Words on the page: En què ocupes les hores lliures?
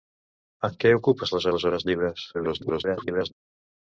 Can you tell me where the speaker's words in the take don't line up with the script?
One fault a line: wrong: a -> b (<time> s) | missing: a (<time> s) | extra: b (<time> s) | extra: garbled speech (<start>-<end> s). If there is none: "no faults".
extra: les (1.5 s)
extra: garbled speech (2.3-3.3 s)